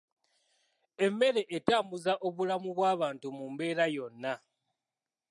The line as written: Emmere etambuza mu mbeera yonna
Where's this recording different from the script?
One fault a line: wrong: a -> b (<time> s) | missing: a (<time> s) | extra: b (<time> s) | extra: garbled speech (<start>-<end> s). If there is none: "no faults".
extra: obulamu bw'abantu (2.3 s)